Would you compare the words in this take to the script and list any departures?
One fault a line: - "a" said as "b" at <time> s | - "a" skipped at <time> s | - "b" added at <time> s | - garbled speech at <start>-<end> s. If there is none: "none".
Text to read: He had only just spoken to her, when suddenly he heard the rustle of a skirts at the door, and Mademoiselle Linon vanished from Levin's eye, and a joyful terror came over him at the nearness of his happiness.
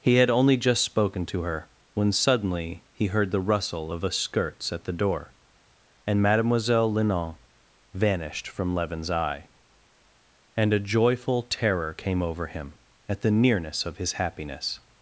none